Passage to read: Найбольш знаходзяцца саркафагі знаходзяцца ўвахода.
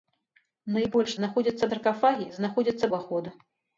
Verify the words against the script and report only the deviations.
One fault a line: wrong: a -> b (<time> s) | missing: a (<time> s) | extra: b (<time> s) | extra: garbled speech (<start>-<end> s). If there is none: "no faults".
no faults